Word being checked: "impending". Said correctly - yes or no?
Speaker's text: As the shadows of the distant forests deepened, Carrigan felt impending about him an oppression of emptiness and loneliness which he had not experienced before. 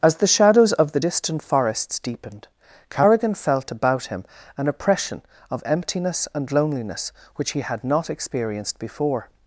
no